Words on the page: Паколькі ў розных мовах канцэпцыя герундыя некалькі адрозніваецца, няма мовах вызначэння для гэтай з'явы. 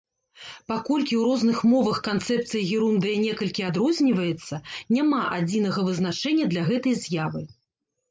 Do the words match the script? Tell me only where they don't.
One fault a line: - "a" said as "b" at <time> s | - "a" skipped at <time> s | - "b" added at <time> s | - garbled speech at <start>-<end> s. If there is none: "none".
- "мовах" said as "адзінага" at 5.4 s